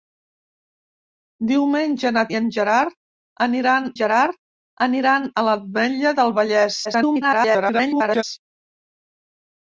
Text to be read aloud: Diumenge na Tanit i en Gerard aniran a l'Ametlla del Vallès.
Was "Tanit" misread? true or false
true